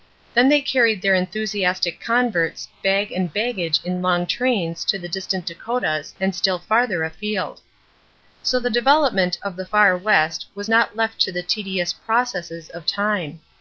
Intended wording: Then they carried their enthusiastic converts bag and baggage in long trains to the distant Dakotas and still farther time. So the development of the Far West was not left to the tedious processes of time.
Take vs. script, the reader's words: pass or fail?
fail